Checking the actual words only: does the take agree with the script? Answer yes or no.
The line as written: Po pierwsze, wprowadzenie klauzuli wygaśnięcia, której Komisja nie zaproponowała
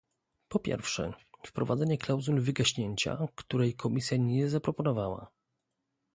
yes